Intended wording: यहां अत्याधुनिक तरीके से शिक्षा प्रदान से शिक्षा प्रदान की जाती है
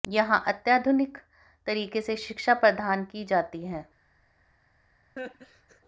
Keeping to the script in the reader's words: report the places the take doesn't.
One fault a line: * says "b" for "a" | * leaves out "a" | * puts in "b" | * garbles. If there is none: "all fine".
* leaves out "से शिक्षा प्रदान"